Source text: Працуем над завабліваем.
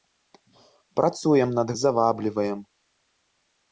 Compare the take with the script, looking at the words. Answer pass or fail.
pass